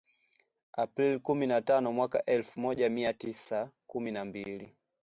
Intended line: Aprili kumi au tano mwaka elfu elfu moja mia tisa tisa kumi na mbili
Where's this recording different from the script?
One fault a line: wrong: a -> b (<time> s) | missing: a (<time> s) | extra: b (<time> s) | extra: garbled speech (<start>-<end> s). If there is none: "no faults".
wrong: au -> na (1.5 s)
missing: elfu (2.6 s)
missing: tisa (3.7 s)